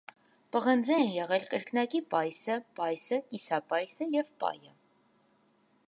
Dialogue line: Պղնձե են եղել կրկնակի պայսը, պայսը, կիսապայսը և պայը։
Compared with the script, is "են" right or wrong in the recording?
right